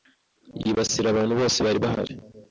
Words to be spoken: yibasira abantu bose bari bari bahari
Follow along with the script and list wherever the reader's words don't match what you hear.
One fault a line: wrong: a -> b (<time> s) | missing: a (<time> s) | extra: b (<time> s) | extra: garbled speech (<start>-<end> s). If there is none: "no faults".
missing: bari (1.8 s)